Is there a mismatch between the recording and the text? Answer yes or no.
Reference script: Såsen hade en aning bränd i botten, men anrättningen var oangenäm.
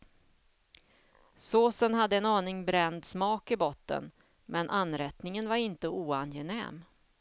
yes